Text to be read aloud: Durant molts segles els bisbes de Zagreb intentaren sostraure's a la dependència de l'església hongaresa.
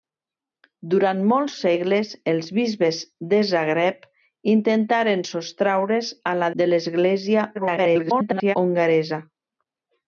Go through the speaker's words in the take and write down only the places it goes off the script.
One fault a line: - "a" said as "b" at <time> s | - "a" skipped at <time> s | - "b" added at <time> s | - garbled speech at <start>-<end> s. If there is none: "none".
- "dependència" skipped at 6.5 s
- garbled speech at 7.5-8.6 s